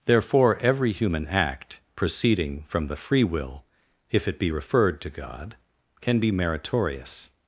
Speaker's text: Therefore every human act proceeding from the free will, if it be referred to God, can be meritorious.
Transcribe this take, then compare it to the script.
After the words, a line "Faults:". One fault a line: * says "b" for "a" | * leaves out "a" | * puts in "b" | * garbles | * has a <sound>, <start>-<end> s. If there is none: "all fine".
Therefore every human act proceeding from the free will, if it be referred to God, can be meritorious.
Faults:
all fine